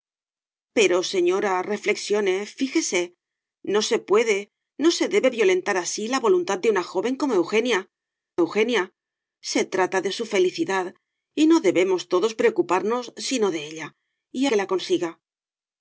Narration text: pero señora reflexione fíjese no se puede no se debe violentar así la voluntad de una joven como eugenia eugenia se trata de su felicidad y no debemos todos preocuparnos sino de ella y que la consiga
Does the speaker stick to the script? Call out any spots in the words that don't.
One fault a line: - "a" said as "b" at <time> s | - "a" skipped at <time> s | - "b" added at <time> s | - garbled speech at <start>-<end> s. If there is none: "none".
none